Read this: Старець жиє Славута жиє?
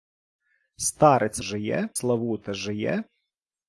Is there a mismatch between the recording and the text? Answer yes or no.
no